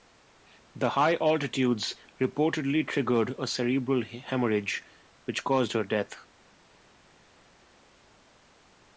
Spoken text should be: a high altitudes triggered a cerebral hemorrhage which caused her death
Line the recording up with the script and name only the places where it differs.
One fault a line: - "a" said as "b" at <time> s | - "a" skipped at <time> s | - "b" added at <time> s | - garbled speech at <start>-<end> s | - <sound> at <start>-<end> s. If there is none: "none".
- "a" said as "the" at 0.8 s
- "reportedly" added at 2.2 s